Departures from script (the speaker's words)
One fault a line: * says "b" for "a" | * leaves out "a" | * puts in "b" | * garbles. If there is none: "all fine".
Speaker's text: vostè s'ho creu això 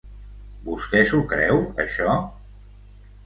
all fine